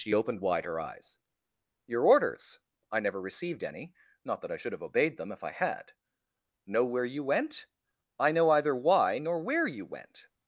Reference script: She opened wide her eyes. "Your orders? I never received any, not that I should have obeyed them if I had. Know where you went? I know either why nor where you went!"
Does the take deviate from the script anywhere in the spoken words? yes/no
no